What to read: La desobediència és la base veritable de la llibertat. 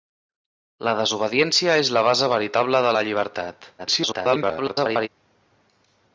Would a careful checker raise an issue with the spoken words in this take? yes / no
yes